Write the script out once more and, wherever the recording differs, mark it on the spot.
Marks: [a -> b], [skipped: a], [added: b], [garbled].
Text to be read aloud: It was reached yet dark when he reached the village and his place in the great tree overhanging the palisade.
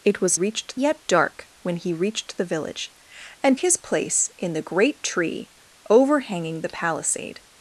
It was reached yet dark when he reached the village and his place in the great tree overhanging the palisade.